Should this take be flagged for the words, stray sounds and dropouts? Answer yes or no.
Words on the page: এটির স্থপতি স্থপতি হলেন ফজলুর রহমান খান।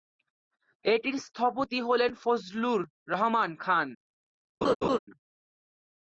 yes